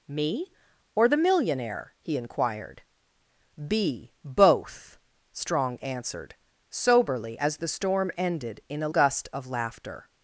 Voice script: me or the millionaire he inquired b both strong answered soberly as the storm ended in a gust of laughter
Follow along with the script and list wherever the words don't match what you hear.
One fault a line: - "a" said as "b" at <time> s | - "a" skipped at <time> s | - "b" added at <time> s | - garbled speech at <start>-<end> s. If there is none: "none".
none